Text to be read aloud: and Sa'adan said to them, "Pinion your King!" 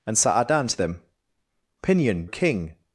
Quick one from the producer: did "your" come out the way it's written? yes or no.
no